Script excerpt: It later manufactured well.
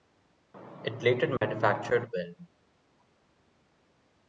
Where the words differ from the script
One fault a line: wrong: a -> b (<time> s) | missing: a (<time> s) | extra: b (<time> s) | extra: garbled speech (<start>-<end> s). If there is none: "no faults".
no faults